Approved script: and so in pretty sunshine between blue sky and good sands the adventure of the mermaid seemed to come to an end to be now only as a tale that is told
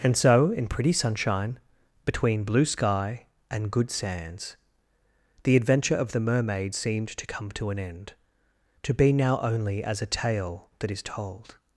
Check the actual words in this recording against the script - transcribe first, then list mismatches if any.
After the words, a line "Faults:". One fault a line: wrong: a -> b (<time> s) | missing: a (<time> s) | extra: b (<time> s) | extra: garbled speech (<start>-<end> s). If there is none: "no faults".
and so in pretty sunshine between blue sky and good sands the adventure of the mermaid seemed to come to an end to be now only as a tale that is told
Faults:
no faults